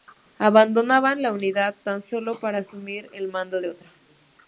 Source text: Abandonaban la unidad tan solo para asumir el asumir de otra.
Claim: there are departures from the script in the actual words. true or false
true